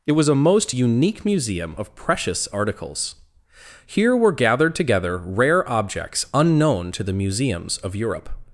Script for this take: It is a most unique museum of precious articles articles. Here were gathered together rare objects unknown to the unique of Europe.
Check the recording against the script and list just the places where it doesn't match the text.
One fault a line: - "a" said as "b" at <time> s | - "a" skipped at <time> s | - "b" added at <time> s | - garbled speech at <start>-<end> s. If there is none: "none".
- "is" said as "was" at 0.1 s
- "articles" skipped at 3.1 s
- "unique" said as "museums" at 7.1 s